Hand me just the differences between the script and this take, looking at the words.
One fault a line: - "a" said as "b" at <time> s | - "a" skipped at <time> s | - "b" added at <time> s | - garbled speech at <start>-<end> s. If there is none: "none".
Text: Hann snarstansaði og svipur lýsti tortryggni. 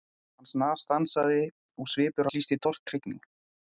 none